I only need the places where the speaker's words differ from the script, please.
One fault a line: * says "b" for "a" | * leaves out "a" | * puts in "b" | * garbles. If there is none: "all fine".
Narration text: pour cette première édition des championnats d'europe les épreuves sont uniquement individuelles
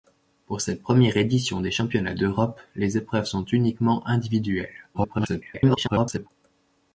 * garbles